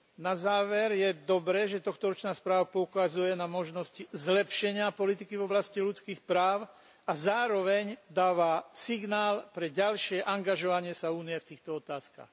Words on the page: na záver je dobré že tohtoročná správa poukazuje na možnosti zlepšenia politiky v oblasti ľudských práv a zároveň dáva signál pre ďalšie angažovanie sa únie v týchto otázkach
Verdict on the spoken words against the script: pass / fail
pass